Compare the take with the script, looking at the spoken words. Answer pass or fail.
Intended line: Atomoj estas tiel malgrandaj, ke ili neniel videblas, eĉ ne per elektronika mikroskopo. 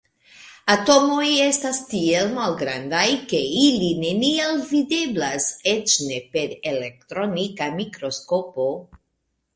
pass